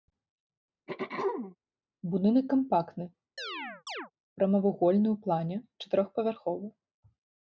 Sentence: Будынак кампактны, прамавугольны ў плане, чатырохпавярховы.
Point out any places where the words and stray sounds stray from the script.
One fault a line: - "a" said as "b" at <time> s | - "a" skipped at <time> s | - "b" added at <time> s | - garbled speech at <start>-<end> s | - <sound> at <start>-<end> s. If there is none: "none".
- throat clearing at 0.9-1.6 s
- chirp at 3.4-4.1 s